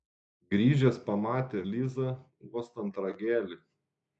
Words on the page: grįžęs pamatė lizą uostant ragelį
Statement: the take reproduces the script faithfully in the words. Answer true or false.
true